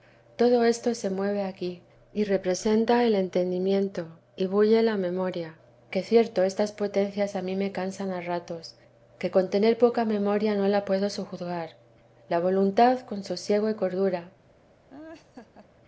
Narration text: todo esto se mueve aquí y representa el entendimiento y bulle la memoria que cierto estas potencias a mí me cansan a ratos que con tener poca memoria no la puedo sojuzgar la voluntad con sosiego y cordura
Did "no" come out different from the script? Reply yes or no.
no